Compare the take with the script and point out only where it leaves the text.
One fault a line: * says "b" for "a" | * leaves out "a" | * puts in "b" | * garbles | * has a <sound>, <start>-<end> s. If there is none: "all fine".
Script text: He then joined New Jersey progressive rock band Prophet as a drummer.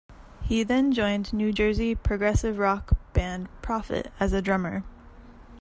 all fine